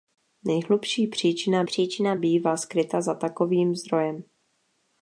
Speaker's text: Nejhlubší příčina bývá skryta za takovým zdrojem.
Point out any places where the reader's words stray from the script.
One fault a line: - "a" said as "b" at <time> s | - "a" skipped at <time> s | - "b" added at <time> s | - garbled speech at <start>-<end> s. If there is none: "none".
- "příčina" added at 1.6 s